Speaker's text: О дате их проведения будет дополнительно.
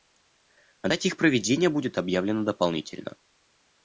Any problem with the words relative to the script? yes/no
yes